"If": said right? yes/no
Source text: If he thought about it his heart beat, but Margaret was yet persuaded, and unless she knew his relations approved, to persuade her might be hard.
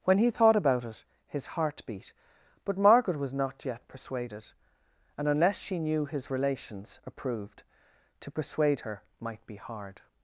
no